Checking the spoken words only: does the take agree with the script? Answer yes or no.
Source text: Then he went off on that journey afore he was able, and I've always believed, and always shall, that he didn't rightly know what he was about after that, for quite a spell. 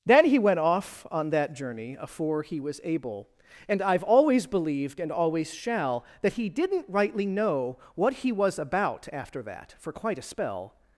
yes